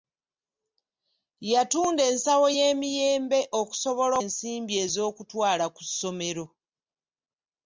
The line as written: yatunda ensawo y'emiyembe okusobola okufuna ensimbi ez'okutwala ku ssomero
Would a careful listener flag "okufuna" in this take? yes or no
yes